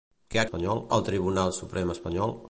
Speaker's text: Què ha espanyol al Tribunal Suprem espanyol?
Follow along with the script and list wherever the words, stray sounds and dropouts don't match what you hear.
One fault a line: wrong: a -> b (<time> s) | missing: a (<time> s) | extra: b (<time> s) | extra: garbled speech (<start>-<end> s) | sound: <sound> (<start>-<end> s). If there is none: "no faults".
no faults